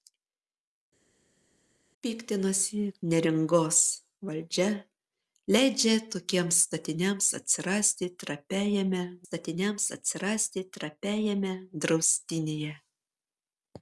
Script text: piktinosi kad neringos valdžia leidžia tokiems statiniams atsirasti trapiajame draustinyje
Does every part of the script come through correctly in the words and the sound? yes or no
no